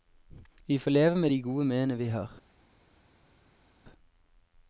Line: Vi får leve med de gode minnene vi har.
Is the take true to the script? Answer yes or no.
yes